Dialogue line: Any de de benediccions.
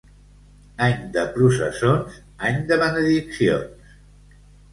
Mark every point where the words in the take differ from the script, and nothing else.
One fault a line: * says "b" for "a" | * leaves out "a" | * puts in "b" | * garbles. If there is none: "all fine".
* puts in "processons any"